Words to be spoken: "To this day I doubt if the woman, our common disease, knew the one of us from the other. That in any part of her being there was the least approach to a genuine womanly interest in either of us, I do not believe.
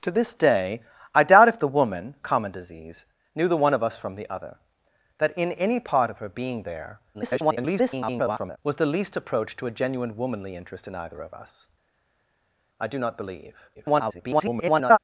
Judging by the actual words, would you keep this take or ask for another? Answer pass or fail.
fail